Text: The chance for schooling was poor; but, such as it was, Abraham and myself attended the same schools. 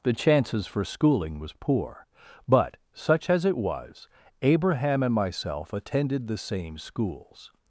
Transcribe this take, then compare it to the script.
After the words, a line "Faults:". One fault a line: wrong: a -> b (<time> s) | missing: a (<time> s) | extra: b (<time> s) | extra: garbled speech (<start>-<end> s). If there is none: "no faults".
The chances for schooling was poor; but, such as it was, Abraham and myself attended the same schools.
Faults:
wrong: chance -> chances (0.1 s)